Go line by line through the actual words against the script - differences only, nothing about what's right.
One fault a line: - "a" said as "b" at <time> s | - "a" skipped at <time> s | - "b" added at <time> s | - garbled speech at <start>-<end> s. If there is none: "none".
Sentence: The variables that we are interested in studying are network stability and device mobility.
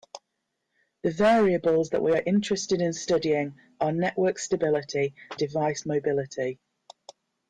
- "and" skipped at 5.1 s